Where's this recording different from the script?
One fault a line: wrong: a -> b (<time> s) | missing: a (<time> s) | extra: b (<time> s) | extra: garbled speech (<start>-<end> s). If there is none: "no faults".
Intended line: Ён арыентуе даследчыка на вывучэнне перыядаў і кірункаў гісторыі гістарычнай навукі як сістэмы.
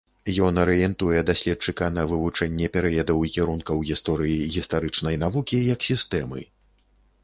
no faults